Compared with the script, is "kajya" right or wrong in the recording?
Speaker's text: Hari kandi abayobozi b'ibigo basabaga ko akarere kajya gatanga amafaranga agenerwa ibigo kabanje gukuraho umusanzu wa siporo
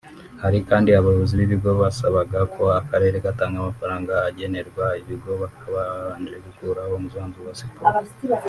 wrong